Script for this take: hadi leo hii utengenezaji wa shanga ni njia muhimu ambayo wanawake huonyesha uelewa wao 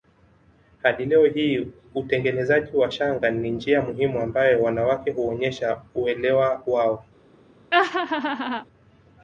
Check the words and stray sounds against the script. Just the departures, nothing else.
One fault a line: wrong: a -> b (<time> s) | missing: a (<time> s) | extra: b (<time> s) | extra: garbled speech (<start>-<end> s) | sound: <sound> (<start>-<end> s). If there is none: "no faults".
sound: laugh (7.7-8.6 s)